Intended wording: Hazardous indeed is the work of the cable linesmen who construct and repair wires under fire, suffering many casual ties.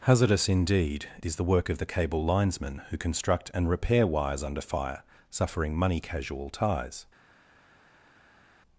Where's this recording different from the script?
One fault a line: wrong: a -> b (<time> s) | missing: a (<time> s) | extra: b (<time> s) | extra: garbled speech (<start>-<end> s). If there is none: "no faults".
wrong: many -> money (5.7 s)